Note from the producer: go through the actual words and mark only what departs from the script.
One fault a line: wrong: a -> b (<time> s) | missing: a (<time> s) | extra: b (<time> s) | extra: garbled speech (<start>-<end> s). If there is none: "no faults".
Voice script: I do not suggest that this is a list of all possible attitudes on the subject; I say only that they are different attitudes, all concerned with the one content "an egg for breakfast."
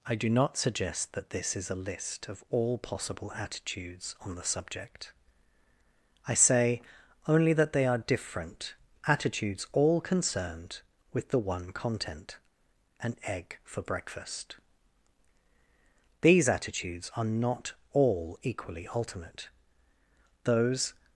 extra: These attitudes are not all equally ultimate Those (16.2 s)